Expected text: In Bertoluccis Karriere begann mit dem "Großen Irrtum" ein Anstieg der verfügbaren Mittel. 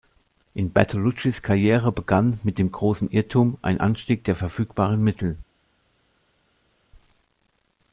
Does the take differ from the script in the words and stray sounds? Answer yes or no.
no